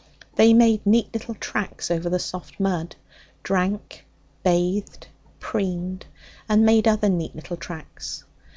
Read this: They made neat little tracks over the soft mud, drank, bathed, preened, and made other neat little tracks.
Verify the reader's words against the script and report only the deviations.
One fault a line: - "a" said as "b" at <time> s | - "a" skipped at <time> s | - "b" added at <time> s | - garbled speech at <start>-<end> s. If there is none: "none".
none